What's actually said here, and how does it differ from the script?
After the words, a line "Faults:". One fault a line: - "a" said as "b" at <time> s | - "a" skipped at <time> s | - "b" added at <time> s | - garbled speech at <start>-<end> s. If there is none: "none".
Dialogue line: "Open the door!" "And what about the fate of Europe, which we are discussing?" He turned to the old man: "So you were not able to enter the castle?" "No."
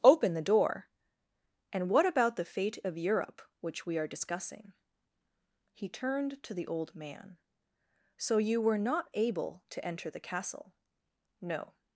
"Open the door!" "And what about the fate of Europe, which we are discussing?" He turned to the old man: "So you were not able to enter the castle?" "No."
Faults:
none